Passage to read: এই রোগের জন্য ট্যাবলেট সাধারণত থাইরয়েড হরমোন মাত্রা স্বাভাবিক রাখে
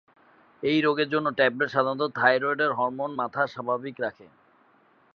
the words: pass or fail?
pass